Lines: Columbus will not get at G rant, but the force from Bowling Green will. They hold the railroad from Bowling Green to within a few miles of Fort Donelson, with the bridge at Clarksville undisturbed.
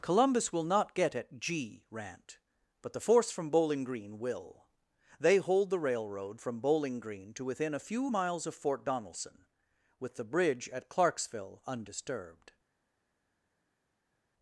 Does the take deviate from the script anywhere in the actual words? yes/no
no